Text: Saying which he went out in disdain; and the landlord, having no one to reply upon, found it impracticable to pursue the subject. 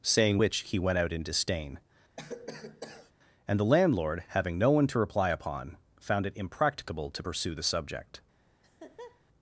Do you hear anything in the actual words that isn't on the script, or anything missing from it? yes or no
no